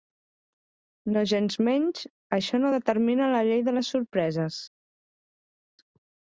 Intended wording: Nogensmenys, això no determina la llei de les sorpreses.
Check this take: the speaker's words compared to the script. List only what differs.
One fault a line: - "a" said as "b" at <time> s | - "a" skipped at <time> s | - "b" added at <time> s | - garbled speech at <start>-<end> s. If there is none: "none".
none